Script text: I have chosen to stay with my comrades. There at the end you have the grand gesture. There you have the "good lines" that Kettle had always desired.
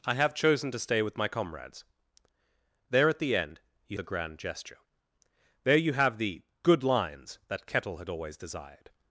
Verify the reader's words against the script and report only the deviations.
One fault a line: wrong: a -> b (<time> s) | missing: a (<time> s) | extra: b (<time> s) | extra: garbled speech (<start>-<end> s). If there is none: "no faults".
missing: have (4.0 s)